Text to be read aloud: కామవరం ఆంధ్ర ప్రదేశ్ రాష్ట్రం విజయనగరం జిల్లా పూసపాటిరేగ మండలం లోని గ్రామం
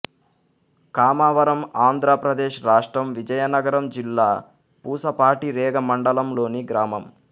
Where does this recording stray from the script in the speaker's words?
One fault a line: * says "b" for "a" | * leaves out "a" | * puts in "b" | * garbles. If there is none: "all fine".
all fine